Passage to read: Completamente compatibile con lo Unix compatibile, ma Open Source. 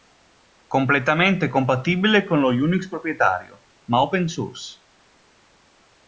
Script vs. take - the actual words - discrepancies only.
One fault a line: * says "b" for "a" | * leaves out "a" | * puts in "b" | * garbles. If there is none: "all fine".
* says "proprietario" for "compatibile"